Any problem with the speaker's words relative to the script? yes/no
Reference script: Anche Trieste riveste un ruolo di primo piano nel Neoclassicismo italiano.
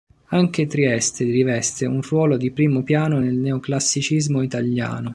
no